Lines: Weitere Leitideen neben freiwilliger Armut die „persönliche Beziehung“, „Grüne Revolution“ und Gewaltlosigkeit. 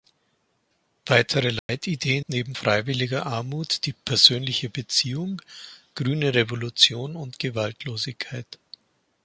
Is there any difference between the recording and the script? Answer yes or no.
no